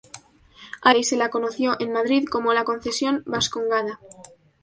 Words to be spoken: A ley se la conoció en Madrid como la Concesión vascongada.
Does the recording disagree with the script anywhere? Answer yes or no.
no